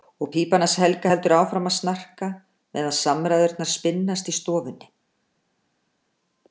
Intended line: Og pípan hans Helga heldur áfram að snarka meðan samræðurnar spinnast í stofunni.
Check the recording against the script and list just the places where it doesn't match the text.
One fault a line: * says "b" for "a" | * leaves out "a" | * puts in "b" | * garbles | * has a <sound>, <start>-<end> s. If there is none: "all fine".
all fine